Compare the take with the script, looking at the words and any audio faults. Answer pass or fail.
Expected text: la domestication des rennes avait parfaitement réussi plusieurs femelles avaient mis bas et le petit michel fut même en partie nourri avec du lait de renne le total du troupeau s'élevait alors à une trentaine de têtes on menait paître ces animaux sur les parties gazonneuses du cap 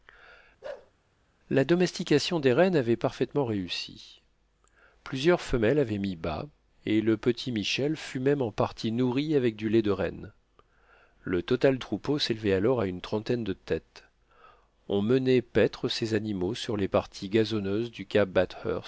fail